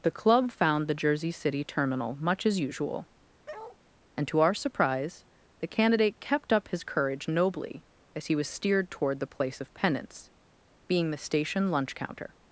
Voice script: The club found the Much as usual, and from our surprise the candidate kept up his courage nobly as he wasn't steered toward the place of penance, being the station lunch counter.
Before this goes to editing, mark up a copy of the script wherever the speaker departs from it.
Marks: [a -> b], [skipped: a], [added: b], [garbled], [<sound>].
The club found the [added: Jersey City terminal] Much as usual, [bark] and [from -> to] our surprise the candidate kept up his courage nobly as he [wasn't -> was] steered toward the place of penance, being the station lunch counter.